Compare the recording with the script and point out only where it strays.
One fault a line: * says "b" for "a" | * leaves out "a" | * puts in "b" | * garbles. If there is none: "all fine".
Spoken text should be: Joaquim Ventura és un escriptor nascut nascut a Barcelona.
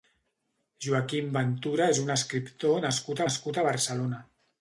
all fine